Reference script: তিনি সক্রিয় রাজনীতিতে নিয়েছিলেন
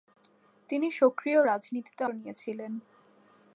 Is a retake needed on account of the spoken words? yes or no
no